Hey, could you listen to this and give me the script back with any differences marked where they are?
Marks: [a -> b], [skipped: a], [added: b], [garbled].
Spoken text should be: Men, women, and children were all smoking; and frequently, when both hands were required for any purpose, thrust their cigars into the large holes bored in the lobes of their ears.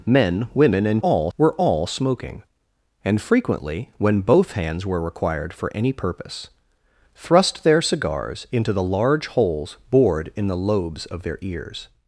Men, women, and [children -> all] were all smoking; and frequently, when both hands were required for any purpose, thrust their cigars into the large holes bored in the lobes of their ears.